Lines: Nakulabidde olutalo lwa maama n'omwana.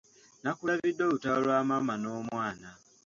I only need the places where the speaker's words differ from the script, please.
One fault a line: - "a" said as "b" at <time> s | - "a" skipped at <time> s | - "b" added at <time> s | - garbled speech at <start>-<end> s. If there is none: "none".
none